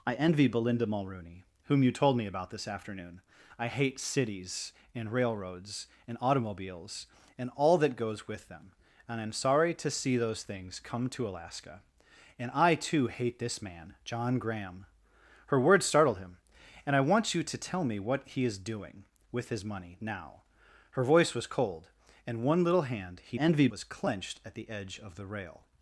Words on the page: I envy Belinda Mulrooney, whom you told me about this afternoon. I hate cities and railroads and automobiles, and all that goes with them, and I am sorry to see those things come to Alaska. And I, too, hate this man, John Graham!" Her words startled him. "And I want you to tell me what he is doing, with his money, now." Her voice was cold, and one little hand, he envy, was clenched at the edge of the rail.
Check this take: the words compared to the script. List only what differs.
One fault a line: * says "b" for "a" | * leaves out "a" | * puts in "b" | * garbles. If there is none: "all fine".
all fine